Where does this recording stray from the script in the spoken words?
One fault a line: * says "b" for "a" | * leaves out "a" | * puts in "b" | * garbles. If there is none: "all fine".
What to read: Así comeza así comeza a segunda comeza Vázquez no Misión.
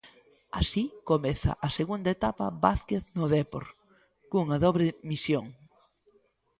* leaves out "así comeza"
* says "etapa" for "comeza"
* puts in "Dépor cunha dobre"